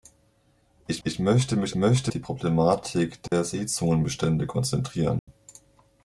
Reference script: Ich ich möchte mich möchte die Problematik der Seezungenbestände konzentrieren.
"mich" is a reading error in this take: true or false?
false